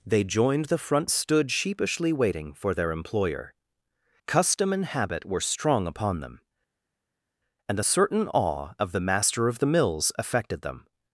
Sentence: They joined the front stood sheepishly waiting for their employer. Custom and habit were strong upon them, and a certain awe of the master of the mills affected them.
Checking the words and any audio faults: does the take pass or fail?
pass